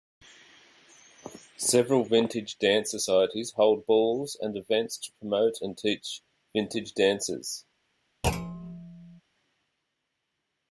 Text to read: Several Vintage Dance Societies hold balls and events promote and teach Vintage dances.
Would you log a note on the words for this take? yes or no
yes